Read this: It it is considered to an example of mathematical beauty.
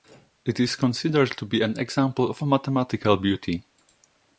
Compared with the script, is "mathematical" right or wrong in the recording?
right